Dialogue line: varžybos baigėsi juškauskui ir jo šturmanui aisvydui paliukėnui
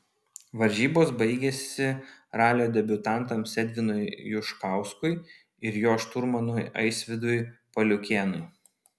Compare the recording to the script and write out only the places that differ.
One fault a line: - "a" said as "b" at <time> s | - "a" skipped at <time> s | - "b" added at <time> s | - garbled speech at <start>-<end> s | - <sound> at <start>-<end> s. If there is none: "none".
- "ralio debiutantams edvinui" added at 2.4 s